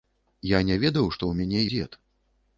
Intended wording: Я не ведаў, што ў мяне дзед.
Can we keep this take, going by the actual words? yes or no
yes